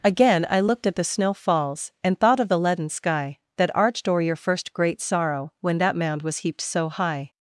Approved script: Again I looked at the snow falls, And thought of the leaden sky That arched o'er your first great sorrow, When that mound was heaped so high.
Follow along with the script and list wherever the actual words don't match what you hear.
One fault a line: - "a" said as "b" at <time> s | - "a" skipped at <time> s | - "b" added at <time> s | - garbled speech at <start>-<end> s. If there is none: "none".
none